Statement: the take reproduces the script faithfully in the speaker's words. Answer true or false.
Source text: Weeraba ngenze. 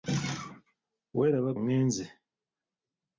true